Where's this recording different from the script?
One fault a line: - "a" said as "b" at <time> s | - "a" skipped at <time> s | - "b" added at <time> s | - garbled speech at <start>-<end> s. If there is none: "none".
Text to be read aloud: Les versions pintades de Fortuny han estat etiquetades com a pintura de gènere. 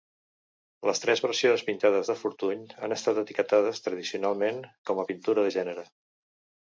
- "tres" added at 1.0 s
- "tradicionalment" added at 3.9 s